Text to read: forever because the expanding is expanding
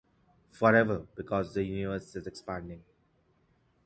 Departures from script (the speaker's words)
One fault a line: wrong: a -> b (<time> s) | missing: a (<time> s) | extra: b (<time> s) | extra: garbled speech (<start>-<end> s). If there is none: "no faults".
wrong: expanding -> universe (1.6 s)